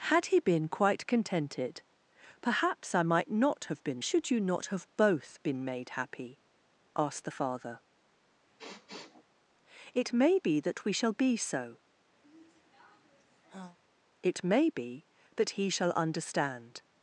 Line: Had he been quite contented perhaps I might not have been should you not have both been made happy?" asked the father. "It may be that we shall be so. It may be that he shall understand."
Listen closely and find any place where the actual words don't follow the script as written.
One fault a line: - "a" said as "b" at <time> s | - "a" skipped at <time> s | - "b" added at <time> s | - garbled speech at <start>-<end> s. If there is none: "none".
none